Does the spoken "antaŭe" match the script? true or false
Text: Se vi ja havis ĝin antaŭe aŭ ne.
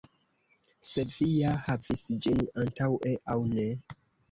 true